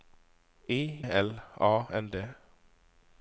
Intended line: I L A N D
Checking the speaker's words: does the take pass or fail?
pass